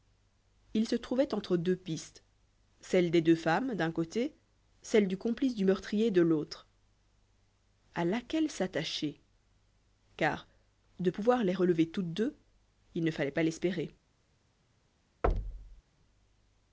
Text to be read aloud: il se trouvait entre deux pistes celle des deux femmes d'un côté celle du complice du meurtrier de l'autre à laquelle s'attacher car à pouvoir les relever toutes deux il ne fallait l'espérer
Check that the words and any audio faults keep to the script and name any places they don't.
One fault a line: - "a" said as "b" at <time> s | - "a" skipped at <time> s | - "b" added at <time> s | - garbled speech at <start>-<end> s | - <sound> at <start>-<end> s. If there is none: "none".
- "à" said as "de" at 11.0 s
- "pas" added at 13.3 s
- thud at 15.2-15.8 s